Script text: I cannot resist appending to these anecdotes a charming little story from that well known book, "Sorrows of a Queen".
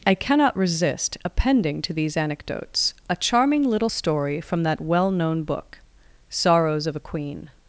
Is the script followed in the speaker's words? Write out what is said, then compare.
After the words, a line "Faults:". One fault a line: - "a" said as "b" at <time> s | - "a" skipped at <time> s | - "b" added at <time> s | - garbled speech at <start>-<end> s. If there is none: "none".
I cannot resist appending to these anecdotes a charming little story from that well known book, "Sorrows of a Queen".
Faults:
none